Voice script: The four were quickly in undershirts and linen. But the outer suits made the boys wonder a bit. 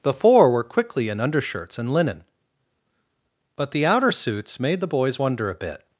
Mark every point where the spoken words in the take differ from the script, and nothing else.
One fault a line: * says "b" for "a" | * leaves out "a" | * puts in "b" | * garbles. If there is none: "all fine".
all fine